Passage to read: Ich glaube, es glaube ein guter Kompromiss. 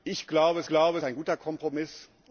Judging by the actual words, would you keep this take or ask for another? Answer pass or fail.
pass